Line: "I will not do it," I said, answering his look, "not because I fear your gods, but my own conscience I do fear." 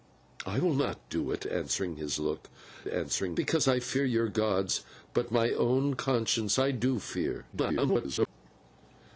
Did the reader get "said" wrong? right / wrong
wrong